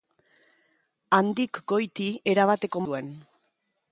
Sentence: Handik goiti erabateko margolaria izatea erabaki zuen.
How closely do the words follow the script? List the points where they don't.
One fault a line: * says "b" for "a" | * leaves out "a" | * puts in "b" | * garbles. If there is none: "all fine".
* leaves out "margolaria izatea erabaki"